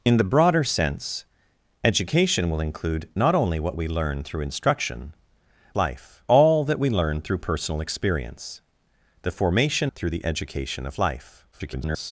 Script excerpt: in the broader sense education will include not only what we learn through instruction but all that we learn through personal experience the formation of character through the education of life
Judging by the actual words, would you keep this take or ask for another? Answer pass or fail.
fail